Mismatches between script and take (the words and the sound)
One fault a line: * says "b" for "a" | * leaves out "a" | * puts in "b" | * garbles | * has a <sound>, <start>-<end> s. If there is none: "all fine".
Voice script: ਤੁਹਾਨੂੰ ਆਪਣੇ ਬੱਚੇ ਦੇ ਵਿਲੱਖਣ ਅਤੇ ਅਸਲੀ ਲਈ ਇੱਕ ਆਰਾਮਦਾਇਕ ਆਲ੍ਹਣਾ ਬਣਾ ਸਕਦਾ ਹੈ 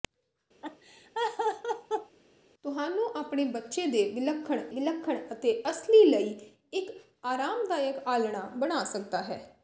* has a laugh, 0.6-2.2 s
* puts in "ਵਿਲੱਖਣ"